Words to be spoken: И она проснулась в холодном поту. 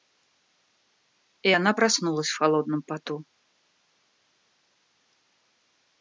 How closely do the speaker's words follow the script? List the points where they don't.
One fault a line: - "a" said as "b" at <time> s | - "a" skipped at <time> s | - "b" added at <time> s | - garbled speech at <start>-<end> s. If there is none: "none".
none